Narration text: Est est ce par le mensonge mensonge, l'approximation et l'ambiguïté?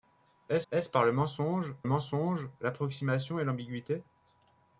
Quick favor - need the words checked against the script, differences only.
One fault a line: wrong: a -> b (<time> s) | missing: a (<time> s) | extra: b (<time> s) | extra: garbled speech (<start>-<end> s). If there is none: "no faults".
no faults